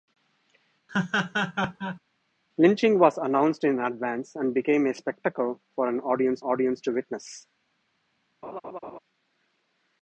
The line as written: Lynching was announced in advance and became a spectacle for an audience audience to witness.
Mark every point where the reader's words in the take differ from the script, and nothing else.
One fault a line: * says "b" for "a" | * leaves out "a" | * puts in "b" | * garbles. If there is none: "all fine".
all fine